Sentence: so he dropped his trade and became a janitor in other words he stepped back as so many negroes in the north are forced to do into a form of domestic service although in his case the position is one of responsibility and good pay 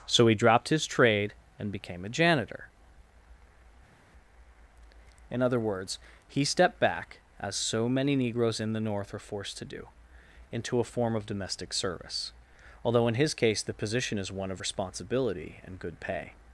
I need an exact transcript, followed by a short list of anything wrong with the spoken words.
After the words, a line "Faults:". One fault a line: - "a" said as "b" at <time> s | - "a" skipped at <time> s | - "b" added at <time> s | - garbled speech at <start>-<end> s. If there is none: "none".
so he dropped his trade and became a janitor in other words he stepped back as so many negroes in the north are forced to do into a form of domestic service although in his case the position is one of responsibility and good pay
Faults:
none